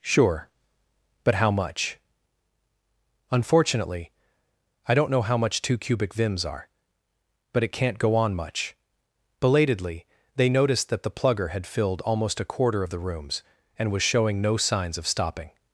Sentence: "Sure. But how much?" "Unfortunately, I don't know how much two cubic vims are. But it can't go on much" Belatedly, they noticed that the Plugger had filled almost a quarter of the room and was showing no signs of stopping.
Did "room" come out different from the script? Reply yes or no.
yes